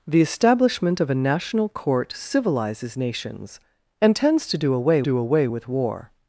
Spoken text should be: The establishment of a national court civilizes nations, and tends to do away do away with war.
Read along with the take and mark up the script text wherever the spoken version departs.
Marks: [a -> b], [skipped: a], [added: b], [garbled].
The establishment of a national court civilizes nations, and tends to do away do away with war.